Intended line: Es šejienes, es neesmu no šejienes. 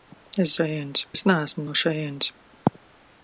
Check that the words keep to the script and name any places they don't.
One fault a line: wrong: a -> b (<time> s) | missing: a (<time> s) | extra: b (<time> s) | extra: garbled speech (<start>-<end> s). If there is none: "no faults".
no faults